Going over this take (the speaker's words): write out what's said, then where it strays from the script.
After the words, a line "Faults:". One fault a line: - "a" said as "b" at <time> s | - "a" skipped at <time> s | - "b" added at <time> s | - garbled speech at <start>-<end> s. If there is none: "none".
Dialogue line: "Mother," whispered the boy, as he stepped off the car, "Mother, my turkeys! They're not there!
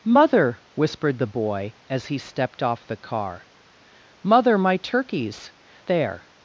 "Mother," whispered the boy, as he stepped off the car, "Mother, my turkeys! There!
Faults:
- "They're not" skipped at 5.5 s